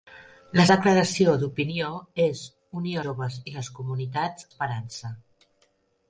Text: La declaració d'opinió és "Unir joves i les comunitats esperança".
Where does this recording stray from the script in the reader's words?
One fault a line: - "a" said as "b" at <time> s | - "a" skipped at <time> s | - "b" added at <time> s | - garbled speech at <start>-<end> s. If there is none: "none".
none